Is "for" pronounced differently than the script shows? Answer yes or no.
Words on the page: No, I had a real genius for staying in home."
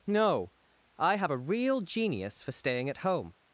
no